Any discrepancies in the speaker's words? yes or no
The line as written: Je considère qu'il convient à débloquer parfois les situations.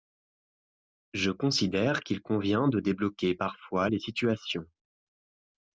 yes